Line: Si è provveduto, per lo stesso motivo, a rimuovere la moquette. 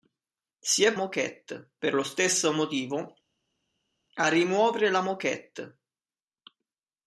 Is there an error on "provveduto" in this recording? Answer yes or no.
yes